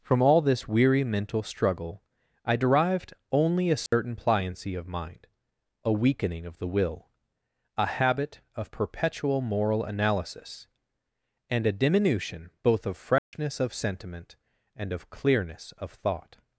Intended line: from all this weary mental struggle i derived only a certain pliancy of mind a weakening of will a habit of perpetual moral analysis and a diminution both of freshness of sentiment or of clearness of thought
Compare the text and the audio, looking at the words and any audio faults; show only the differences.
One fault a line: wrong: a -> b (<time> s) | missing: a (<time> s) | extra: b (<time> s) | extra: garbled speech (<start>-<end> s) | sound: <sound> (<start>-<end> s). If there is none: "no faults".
sound: dropout (3.9-3.9 s)
extra: the (6.6 s)
sound: dropout (13.2-13.3 s)
wrong: or -> and (14.7 s)